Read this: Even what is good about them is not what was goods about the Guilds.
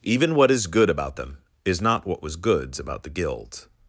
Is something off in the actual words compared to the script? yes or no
no